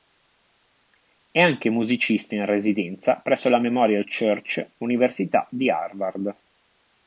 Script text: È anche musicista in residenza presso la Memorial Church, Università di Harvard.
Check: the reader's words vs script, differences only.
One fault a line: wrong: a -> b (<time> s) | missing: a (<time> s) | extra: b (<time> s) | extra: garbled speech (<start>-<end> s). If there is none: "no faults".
no faults